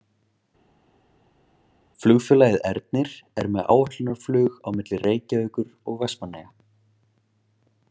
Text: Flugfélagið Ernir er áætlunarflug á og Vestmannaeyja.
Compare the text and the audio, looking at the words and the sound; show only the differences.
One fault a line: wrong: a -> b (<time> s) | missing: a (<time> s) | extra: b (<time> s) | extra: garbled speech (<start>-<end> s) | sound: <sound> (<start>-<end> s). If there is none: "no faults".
extra: með (3.5 s)
extra: milli Reykjavíkur (4.8 s)